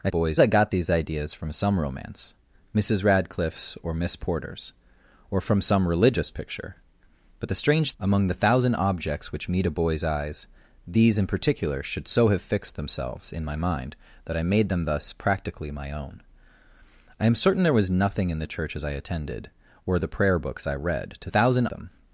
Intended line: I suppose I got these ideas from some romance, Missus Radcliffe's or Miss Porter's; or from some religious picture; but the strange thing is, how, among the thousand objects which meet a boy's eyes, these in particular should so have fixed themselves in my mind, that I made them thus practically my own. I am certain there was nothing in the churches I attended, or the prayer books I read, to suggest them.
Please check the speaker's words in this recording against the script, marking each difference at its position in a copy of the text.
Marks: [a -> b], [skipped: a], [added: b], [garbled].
I [suppose -> boy's] I got these ideas from some romance, Missus Radcliffe's or Miss Porter's; or from some religious picture; but the strange [skipped: thing is, how,] among the thousand objects which meet a boy's eyes, these in particular should so have fixed themselves in my mind, that I made them thus practically my own. I am certain there was nothing in the churches I attended, or the prayer books I read, to [suggest -> thousand] them.